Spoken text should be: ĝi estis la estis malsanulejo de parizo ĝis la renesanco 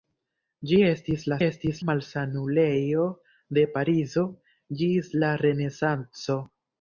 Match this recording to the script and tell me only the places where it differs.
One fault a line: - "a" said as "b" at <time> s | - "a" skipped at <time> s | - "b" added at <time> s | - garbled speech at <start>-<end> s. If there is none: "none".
none